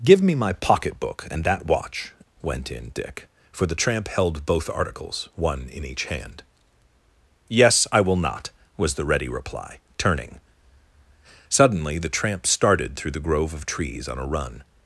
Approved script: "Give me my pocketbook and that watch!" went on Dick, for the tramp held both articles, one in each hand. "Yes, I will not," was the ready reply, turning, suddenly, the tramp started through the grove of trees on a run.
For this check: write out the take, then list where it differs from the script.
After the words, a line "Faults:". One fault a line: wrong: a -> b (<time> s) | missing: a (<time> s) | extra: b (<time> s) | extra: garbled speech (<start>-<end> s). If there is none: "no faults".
"Give me my pocketbook and that watch!" went in Dick, for the tramp held both articles, one in each hand. "Yes, I will not," was the ready reply, turning, suddenly, the tramp started through the grove of trees on a run.
Faults:
wrong: on -> in (2.7 s)